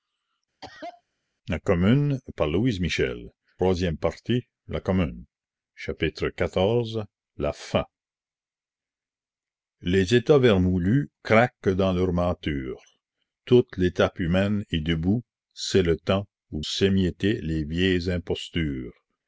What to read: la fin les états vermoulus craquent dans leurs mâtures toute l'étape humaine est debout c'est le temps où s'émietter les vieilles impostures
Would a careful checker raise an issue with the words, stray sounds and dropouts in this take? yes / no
yes